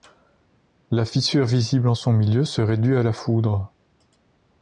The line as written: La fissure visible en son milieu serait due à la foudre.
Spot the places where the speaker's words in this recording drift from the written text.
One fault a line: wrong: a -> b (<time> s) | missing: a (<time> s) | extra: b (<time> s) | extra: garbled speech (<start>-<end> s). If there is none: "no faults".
no faults